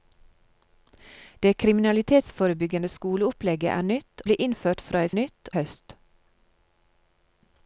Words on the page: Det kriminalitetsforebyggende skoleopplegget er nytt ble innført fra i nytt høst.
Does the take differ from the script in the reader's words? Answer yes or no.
no